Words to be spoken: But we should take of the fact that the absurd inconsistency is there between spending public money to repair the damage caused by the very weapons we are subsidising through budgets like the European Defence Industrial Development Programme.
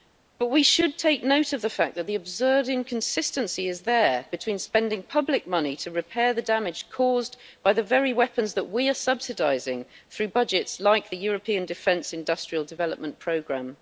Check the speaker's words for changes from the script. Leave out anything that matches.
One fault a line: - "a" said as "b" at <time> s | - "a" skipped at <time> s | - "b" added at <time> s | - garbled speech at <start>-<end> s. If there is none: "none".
- "note" added at 1.2 s
- "that" added at 8.5 s